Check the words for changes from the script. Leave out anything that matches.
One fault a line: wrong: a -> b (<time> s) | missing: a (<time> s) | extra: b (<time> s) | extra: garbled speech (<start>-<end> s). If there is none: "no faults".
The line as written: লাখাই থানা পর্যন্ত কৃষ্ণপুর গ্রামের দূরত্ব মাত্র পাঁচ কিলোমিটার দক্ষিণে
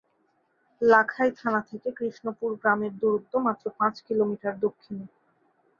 wrong: পর্যন্ত -> থেকে (1.7 s)